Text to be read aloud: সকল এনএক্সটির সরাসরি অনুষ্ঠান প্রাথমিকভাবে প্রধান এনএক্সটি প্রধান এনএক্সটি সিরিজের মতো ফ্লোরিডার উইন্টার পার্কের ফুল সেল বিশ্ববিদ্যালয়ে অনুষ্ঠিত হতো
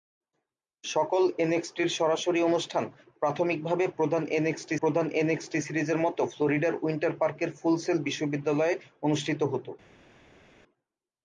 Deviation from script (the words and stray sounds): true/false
false